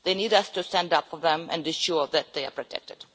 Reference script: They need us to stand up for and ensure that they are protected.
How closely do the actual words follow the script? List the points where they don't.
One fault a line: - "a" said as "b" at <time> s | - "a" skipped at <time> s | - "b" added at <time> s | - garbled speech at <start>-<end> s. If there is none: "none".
- "them" added at 1.2 s